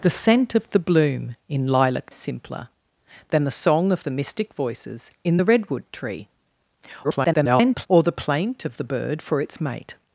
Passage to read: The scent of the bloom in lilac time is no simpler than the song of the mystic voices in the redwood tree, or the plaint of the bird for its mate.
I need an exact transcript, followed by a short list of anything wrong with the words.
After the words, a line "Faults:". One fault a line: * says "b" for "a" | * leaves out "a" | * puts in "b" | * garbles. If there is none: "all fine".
The scent of the bloom in lilac simpler than the song of the mystic voices in the redwood tree, [garbled] or the plaint of the bird for its mate.
Faults:
* leaves out "time is no"
* garbles